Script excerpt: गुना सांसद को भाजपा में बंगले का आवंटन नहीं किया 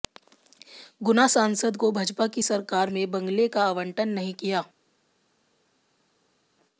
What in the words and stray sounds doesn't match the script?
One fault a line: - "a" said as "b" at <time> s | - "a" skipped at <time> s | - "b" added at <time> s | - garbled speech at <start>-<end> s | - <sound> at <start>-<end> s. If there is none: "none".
- "की सरकार" added at 2.3 s